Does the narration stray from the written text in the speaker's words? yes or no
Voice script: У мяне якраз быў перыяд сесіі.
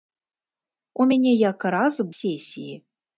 yes